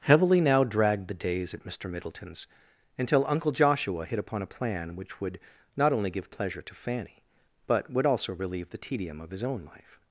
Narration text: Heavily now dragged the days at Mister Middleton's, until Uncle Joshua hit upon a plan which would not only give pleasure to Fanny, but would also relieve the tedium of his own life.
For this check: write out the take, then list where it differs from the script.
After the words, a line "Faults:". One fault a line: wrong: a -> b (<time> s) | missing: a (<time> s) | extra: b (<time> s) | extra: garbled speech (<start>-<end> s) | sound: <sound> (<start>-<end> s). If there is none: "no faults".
Heavily now dragged the days at Mister Middleton's, until Uncle Joshua hit upon a plan which would not only give pleasure to Fanny, but would also relieve the tedium of his own life.
Faults:
no faults